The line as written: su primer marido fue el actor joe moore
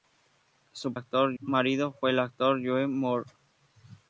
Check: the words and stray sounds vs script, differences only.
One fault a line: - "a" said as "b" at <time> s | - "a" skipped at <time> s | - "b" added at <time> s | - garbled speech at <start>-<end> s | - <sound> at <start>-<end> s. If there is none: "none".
- "primer" said as "actor" at 0.9 s